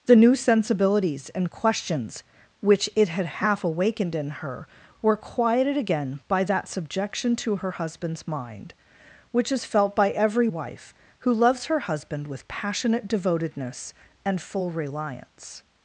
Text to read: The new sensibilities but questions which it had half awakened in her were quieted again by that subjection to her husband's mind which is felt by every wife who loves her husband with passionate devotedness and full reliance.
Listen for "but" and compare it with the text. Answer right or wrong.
wrong